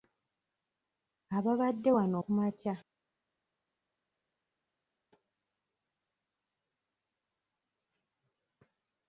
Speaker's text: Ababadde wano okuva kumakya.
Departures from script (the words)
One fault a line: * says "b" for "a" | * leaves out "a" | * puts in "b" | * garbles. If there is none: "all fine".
* leaves out "okuva"